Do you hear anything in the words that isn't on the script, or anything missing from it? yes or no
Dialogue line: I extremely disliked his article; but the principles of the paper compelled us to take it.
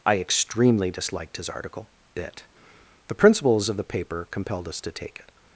yes